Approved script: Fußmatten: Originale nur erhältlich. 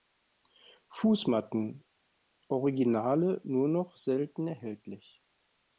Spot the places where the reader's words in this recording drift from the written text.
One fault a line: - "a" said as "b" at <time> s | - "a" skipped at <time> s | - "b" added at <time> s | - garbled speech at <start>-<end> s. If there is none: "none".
- "noch selten" added at 3.7 s